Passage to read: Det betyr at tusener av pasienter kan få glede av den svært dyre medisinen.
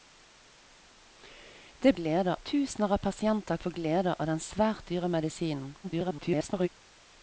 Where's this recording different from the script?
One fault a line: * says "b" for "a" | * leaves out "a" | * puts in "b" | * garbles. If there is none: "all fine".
* says "glede" for "betyr"
* leaves out "kan"
* garbles